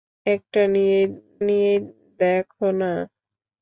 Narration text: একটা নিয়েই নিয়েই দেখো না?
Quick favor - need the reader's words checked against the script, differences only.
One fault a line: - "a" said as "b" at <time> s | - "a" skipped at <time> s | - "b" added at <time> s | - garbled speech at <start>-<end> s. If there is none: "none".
none